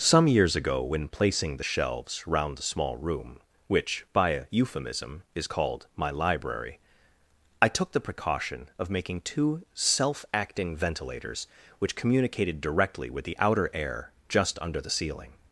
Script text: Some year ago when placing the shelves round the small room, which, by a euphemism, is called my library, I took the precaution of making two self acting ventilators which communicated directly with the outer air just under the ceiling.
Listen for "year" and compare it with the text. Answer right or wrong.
wrong